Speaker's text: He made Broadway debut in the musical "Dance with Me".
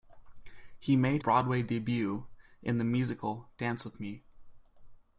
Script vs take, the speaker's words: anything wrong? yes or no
no